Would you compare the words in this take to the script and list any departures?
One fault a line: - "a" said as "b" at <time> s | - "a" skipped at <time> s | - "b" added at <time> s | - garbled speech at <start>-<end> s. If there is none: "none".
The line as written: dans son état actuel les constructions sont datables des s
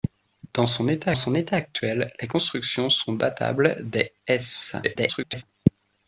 - "son état" added at 1.1 s
- garbled speech at 4.8-5.4 s